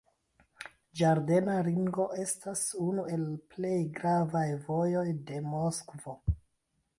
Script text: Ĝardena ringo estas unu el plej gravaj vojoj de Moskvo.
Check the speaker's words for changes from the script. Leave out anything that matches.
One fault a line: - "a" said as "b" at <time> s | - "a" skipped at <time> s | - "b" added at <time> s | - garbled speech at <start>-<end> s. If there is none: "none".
none